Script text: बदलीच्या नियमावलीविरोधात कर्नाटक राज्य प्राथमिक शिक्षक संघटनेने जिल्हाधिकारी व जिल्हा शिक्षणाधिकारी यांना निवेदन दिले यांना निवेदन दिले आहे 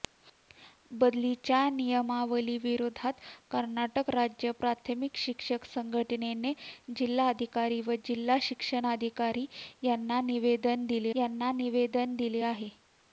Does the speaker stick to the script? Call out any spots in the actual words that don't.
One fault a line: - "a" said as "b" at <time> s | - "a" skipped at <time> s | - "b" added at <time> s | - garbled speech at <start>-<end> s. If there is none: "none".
none